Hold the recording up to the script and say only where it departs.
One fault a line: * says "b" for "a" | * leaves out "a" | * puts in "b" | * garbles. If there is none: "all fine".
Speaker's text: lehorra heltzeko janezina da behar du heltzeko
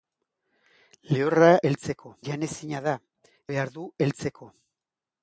all fine